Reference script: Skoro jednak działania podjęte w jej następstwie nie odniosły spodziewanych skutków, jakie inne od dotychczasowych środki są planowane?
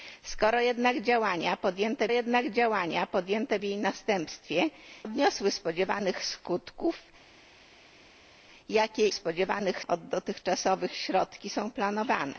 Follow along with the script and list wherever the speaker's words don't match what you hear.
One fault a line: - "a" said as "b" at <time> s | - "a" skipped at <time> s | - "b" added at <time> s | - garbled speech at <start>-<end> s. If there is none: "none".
- "jednak działania podjęte" added at 2.1 s
- "nie" skipped at 4.7 s
- "inne" said as "spodziewanych" at 9.1 s